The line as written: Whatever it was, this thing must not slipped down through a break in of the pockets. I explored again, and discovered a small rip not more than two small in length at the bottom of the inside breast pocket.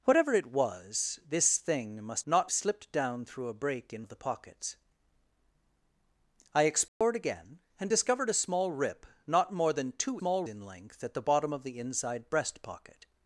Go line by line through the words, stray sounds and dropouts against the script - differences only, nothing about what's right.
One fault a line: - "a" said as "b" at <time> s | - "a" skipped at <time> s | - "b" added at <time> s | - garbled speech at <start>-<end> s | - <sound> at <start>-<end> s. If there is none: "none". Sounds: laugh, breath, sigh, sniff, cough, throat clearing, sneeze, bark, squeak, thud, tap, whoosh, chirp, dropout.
- dropout at 6.9-7.0 s